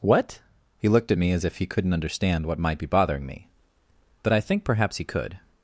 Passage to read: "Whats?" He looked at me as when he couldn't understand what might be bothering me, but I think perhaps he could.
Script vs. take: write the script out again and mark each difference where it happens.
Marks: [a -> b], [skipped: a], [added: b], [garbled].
["Whats?" -> What] He looked at me as [when -> if] he couldn't understand what might be bothering me, but I think perhaps he could.